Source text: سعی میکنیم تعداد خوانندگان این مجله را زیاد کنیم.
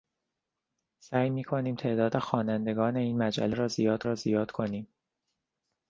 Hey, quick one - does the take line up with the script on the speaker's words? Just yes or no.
no